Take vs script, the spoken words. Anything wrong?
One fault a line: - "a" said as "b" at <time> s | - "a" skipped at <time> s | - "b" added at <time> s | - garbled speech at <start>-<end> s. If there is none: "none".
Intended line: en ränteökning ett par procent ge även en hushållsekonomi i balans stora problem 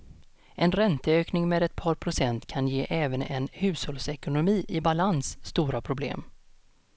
- "med" added at 1.5 s
- "kan" added at 2.5 s